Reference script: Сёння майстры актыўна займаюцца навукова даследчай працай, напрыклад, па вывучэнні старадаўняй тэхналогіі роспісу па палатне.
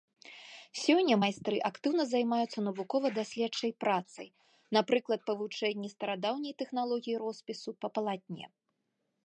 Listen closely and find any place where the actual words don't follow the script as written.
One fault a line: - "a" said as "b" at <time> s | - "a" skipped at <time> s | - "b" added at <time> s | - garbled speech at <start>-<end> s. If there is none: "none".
none